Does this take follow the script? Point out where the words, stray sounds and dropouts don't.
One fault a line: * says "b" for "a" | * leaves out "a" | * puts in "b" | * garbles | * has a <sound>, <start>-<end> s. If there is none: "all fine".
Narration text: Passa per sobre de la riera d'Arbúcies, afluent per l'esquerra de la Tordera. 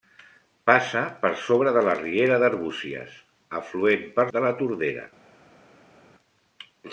* leaves out "l'esquerra"